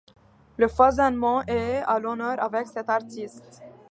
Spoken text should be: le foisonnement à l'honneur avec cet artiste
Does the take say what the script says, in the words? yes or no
no